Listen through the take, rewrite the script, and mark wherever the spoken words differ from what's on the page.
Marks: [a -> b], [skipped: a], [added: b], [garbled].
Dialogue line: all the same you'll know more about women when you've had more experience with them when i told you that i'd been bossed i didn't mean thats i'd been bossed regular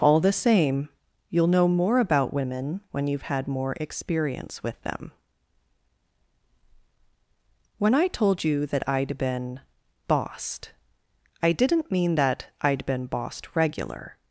all the same you'll know more about women when you've had more experience with them when i told you that i'd been bossed i didn't mean [thats -> that] i'd been bossed regular